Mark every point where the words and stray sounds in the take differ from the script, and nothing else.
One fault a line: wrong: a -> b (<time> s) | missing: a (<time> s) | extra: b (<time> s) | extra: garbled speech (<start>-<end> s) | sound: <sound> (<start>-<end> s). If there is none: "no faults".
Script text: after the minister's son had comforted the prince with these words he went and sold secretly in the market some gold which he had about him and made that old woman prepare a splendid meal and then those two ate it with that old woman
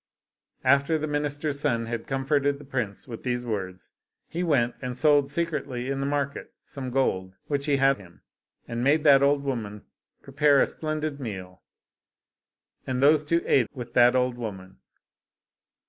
missing: about (8.0 s)
missing: then (13.0 s)
missing: it (13.7 s)